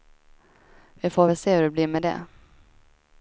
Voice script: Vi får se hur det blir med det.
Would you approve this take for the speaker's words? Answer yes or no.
no